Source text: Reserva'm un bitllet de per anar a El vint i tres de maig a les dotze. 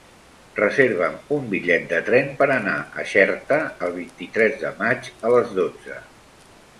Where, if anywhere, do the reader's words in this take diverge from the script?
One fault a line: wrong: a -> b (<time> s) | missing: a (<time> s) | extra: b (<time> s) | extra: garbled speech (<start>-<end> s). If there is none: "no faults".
extra: tren (2.1 s)
extra: Xerta (3.1 s)